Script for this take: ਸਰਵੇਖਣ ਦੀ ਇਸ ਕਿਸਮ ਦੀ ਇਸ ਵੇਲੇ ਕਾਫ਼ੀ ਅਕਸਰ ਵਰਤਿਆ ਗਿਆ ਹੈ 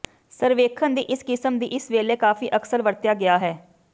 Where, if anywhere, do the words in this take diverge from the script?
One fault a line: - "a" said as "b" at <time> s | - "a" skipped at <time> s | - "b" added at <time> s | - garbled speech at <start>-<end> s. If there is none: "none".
none